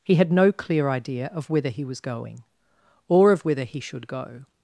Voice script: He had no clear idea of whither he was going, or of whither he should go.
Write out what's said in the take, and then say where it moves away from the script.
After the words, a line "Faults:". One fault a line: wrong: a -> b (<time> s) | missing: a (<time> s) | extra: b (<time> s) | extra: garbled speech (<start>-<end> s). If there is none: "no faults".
He had no clear idea of whither he was going, or of whither he should go.
Faults:
no faults